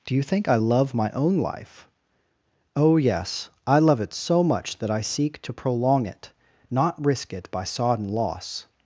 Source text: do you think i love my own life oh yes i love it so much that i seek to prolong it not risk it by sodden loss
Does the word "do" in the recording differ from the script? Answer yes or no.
no